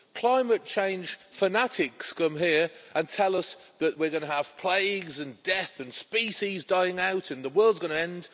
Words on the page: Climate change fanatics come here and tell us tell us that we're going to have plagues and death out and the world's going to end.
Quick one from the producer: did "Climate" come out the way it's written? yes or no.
yes